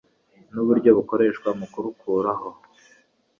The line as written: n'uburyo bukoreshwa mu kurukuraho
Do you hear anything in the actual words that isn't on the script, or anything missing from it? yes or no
no